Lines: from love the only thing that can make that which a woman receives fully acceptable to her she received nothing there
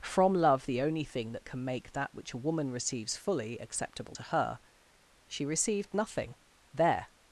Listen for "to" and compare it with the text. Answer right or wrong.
right